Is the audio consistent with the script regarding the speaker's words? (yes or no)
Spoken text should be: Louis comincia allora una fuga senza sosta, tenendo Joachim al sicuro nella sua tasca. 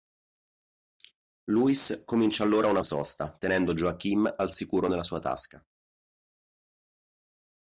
no